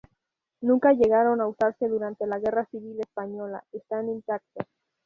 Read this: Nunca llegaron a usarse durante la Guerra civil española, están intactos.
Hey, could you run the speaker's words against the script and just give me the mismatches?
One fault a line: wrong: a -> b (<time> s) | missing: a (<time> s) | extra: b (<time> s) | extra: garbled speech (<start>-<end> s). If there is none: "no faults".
no faults